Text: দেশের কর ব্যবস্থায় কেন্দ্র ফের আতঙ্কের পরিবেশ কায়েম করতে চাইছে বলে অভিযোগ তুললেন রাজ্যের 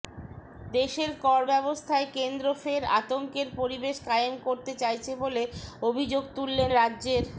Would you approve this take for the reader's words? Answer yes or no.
yes